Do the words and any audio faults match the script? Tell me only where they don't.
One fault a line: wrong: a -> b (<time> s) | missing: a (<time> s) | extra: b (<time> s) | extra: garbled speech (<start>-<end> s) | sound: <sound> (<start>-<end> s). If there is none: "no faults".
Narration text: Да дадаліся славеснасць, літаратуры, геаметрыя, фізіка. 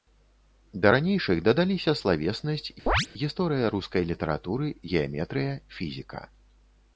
extra: ранейшых (0.9 s)
sound: chirp (2.9-3.1 s)
extra: гісторыя рускай (3.2 s)